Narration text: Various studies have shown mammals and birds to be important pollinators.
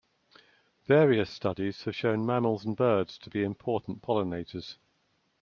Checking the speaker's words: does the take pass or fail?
pass